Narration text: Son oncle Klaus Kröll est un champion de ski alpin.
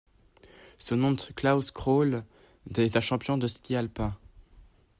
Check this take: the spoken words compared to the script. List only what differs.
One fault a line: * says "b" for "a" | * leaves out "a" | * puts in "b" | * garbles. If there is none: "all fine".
all fine